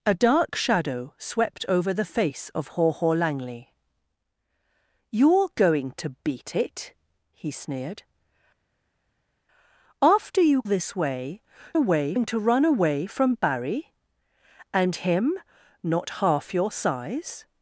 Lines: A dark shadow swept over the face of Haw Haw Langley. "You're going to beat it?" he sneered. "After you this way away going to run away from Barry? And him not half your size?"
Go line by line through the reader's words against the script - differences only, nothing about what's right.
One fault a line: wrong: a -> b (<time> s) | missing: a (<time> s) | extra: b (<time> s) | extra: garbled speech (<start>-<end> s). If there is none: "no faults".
no faults